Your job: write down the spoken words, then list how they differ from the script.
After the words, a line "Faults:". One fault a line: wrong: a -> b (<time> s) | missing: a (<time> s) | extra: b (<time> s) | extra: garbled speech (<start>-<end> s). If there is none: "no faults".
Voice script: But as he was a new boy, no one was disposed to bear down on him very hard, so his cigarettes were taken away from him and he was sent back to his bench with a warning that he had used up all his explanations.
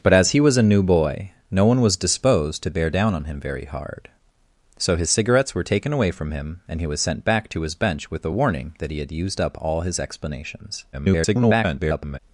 But as he was a new boy, no one was disposed to bear down on him very hard, so his cigarettes were taken away from him and he was sent back to his bench with a warning that he had used up all his explanations. [garbled]
Faults:
extra: garbled speech (10.9-12.2 s)